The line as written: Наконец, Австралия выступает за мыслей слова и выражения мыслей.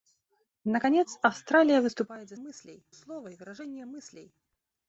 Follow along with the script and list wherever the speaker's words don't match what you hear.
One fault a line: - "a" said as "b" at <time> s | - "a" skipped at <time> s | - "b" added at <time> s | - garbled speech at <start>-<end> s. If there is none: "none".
none